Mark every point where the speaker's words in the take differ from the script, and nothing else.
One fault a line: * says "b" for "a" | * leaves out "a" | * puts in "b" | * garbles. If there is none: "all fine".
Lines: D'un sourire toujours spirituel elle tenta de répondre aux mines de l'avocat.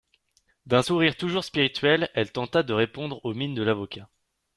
all fine